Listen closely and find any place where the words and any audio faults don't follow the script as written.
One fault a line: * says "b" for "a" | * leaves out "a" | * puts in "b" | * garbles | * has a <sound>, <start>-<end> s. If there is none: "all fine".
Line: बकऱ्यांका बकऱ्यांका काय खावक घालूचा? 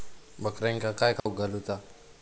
* leaves out "बकऱ्यांका"
* has a dropout, 1.2-1.3 s